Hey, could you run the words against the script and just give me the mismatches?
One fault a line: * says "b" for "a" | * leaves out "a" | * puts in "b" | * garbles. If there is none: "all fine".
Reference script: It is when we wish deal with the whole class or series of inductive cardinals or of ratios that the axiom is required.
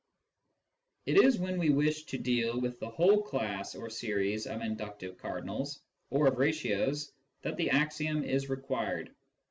* puts in "to"